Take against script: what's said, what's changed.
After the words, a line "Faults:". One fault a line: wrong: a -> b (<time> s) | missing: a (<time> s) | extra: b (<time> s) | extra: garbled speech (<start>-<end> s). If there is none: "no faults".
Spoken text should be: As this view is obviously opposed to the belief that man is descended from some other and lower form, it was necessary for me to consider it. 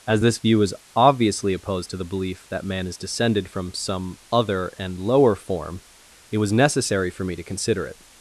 As this view is obviously opposed to the belief that man is descended from some other and lower form, it was necessary for me to consider it.
Faults:
no faults